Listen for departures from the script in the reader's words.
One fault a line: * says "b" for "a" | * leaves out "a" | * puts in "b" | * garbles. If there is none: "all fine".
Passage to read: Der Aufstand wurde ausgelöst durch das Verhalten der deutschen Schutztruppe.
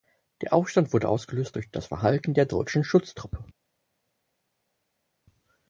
all fine